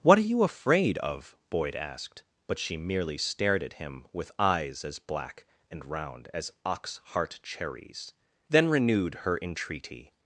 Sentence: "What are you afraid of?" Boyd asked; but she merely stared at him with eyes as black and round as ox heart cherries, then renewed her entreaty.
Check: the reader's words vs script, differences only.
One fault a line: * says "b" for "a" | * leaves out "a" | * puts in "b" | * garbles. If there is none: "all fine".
all fine